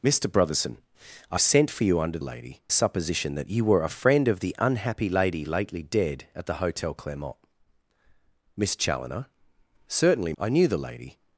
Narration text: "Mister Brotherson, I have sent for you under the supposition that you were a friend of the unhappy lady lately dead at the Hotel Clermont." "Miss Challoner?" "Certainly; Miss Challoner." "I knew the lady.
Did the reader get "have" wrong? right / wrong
wrong